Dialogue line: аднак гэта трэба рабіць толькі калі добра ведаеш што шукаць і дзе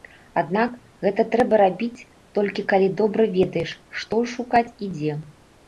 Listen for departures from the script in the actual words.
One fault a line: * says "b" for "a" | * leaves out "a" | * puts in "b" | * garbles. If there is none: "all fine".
all fine